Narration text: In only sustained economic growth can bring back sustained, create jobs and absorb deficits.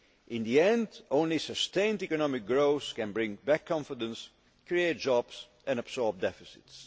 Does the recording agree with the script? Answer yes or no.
no